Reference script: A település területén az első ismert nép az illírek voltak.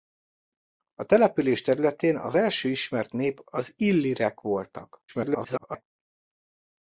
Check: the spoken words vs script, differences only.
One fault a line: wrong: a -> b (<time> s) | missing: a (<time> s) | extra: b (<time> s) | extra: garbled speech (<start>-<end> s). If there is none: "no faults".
extra: garbled speech (5.1-5.8 s)